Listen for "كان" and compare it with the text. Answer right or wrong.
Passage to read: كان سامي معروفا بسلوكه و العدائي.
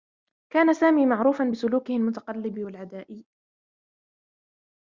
right